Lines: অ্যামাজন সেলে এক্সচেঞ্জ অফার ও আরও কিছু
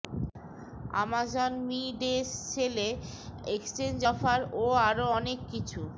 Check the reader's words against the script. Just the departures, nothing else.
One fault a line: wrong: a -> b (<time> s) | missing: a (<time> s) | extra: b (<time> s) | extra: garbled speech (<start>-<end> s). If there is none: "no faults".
extra: মি ডে (1.7 s)
extra: অনেক (5.2 s)